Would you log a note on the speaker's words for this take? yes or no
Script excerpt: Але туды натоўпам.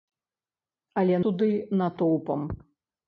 no